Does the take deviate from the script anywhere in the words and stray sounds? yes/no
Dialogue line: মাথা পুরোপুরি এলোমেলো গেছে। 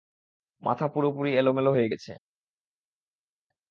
yes